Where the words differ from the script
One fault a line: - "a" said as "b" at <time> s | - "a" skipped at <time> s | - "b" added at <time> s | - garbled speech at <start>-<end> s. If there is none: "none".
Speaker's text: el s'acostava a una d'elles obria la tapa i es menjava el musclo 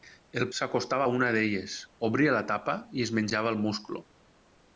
none